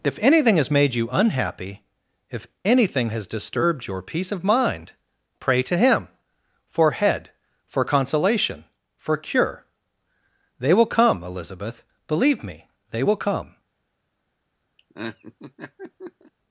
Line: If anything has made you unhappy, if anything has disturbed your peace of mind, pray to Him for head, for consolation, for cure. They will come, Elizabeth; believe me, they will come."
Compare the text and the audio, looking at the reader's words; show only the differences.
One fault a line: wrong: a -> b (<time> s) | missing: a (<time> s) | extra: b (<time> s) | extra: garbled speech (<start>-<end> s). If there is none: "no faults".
no faults